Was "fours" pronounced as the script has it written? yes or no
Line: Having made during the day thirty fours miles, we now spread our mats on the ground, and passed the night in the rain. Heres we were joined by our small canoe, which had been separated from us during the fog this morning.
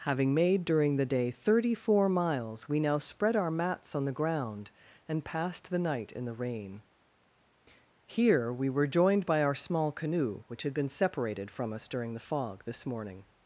no